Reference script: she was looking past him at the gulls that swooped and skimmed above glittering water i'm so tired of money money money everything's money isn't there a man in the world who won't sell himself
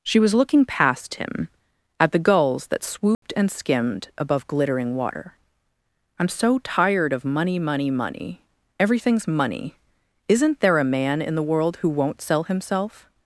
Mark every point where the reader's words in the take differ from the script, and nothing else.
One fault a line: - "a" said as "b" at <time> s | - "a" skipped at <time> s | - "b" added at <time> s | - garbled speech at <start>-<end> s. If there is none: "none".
none